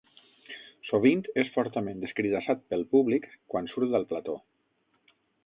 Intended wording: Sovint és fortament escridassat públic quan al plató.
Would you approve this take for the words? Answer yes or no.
no